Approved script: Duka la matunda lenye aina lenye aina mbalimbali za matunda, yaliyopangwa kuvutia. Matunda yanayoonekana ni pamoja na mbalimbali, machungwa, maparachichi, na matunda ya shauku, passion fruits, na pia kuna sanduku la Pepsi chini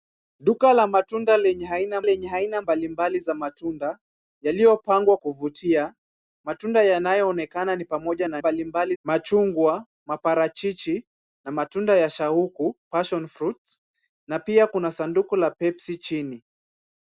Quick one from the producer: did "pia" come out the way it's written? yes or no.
yes